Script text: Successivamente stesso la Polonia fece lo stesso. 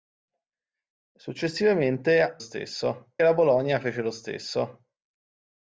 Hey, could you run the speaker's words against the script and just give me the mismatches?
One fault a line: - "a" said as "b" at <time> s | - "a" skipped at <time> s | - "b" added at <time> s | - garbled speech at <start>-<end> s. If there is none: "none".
none